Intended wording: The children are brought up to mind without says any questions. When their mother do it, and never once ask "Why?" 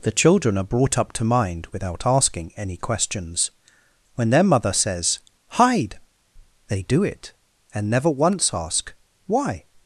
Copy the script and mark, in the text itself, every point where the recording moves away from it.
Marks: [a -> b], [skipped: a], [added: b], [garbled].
The children are brought up to mind without [says -> asking] any questions. When their mother [added: says Hide they] do it, and never once ask "Why?"